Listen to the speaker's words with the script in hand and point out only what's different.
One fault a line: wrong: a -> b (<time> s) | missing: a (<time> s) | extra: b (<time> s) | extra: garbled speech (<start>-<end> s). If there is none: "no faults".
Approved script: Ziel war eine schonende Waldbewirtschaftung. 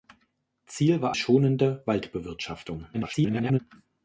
missing: eine (1.1 s)
extra: garbled speech (2.9-3.6 s)